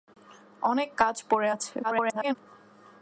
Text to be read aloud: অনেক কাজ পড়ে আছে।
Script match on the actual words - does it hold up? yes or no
no